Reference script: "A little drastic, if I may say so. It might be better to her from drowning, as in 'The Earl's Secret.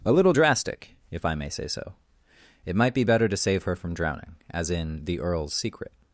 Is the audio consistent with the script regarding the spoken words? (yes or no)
no